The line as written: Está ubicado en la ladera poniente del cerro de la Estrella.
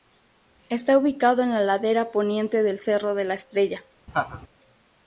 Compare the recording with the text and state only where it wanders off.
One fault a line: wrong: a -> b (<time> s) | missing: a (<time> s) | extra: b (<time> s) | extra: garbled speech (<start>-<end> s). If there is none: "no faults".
no faults